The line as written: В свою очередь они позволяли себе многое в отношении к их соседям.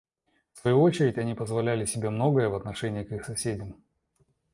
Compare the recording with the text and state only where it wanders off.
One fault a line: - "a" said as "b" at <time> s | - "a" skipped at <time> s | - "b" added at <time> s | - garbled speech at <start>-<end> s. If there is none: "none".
none